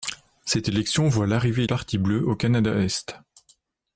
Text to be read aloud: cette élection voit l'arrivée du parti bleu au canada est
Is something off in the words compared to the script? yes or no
yes